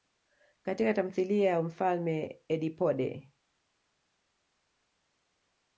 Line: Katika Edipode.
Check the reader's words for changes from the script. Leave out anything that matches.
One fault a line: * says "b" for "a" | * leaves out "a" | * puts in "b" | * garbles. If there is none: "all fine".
* puts in "tamthilia ya Mfalme"